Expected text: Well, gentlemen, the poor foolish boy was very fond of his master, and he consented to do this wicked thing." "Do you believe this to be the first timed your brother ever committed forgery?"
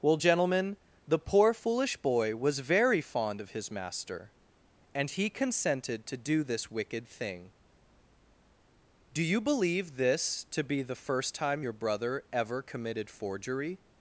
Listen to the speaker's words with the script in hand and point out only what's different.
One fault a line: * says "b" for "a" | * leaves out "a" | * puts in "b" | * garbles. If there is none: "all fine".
* says "time" for "timed"